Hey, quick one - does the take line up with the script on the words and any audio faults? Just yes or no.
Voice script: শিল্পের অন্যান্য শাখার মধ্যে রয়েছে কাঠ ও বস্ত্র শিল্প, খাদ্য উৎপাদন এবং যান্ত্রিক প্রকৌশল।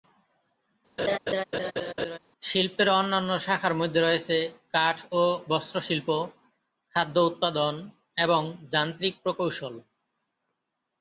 no